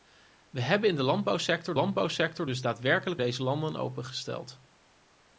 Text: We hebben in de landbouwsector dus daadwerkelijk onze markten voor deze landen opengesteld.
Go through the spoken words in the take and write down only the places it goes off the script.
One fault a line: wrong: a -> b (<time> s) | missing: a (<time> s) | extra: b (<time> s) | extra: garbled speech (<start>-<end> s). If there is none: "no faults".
extra: landbouwsector (1.7 s)
missing: onze markten voor (3.2 s)